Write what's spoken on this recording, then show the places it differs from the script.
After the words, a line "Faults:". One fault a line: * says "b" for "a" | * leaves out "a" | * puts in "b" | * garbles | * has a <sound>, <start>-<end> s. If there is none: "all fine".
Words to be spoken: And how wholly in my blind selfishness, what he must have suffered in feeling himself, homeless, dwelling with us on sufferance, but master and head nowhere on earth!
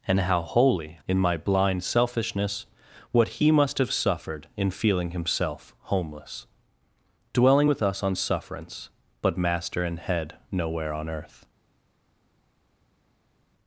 And how wholly in my blind selfishness, what he must have suffered in feeling himself, homeless, dwelling with us on sufferance, but master and head nowhere on earth!
Faults:
all fine